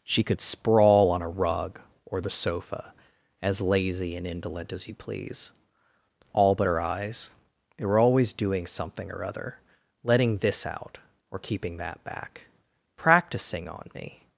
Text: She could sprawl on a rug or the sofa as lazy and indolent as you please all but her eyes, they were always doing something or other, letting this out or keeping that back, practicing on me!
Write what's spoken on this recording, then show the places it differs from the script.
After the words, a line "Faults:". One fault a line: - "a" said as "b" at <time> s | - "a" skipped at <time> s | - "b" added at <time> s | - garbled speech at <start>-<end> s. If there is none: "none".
She could sprawl on a rug or the sofa as lazy and indolent as you please all but her eyes, they were always doing something or other, letting this out or keeping that back, practicing on me!
Faults:
none